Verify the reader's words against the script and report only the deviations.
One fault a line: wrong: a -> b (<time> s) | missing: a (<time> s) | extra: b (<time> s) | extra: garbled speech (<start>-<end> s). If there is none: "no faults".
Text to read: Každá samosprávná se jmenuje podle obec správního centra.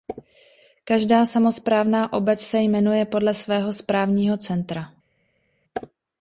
extra: obec (2.1 s)
wrong: obec -> svého (3.3 s)